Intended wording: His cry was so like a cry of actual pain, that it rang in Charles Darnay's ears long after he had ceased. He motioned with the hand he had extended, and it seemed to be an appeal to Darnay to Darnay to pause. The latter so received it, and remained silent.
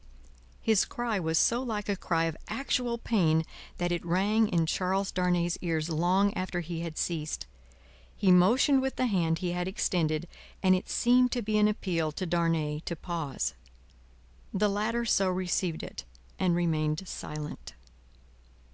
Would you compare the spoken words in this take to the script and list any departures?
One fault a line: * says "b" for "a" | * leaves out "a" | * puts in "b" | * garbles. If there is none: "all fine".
* leaves out "Darnay to"